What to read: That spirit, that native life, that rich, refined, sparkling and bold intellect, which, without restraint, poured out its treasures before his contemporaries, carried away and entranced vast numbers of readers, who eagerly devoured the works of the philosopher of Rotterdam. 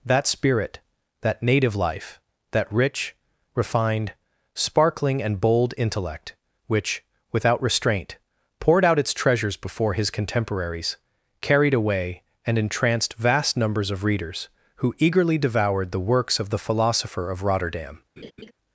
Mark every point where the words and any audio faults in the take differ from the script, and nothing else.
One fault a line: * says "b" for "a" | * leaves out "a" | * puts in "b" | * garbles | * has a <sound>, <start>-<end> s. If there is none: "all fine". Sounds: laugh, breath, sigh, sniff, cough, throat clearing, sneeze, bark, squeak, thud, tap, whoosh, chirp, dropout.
* has a laugh, 18.2-18.5 s